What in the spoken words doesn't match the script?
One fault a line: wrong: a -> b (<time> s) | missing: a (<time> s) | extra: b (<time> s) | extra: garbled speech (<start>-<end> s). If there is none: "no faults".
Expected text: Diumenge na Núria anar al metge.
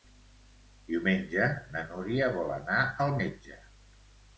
extra: vol (2.4 s)